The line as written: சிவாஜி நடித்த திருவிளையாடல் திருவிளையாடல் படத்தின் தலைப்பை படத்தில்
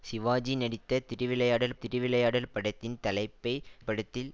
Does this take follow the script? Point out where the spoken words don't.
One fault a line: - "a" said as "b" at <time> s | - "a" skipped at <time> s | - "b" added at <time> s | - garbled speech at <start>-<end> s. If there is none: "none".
none